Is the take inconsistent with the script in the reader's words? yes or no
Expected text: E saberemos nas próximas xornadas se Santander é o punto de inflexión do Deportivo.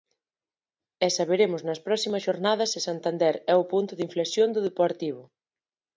no